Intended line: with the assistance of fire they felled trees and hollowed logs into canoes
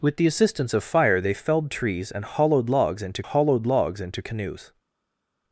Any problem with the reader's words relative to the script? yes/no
yes